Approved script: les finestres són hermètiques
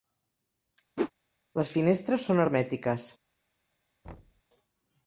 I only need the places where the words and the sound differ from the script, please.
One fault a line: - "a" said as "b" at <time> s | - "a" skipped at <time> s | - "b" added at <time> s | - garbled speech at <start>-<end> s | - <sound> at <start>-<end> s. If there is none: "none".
- whoosh at 1.0-1.1 s
- thud at 4.0-4.4 s